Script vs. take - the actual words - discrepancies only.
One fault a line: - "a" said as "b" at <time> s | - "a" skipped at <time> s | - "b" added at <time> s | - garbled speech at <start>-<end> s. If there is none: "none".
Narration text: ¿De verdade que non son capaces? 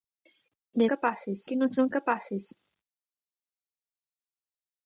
- "verdade" said as "capaces" at 0.9 s